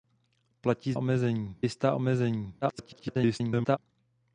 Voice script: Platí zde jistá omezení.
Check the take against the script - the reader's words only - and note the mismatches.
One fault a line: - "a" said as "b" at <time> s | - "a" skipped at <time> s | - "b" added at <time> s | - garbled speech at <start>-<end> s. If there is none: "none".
- "zde" said as "omezení" at 0.9 s
- garbled speech at 2.6-3.8 s